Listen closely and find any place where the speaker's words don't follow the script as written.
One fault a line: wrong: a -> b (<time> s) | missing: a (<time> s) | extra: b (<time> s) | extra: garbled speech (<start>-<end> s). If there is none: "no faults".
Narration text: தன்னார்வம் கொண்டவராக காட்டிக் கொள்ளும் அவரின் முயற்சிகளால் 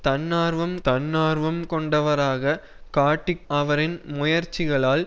extra: தன்னார்வம் (0.9 s)
missing: கொள்ளும் (3.5 s)